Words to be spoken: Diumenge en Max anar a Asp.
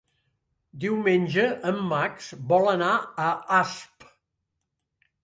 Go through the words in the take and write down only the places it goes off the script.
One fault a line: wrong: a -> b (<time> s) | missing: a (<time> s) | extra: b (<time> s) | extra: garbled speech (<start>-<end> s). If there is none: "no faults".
extra: vol (2.5 s)